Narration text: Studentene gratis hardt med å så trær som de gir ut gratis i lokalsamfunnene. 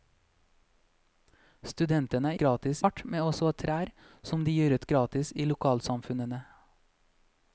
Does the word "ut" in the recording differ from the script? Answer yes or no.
no